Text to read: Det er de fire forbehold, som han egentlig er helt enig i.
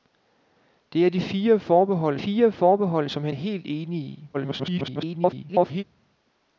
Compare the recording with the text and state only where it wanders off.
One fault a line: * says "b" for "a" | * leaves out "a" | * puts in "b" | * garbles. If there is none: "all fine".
* puts in "fire forbehold"
* leaves out "egentlig"
* garbles